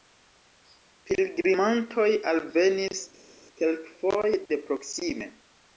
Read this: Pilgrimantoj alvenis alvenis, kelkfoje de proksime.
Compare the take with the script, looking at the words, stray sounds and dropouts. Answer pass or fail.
fail